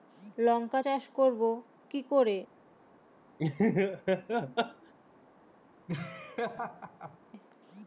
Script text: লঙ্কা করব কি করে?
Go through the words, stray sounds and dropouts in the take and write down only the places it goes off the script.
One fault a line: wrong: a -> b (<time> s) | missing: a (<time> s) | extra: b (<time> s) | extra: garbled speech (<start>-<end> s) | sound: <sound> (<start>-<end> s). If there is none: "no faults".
extra: চাষ (0.8 s)
sound: laugh (3.4-4.9 s)
sound: laugh (5.9-7.2 s)